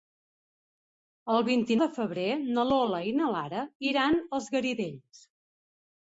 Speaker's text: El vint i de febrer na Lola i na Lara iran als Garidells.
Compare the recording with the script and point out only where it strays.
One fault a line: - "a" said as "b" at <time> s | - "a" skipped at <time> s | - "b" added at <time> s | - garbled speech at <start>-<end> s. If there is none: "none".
none